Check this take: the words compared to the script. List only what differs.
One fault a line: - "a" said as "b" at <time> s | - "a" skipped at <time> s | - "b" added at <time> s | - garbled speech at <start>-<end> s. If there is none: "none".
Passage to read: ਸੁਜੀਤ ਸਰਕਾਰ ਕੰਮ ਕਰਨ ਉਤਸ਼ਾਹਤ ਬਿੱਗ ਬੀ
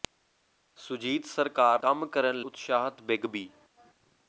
none